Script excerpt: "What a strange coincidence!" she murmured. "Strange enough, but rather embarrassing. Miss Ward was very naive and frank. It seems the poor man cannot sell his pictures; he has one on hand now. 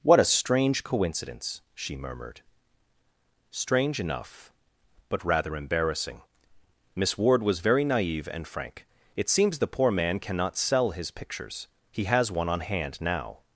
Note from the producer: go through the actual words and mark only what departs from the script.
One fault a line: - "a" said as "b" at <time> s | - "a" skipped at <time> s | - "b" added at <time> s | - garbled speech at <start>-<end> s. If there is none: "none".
none